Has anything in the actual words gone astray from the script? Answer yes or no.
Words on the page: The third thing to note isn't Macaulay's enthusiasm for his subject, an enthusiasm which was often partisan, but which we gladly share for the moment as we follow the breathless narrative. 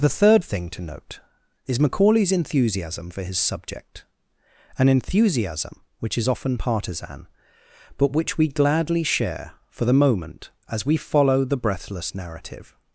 yes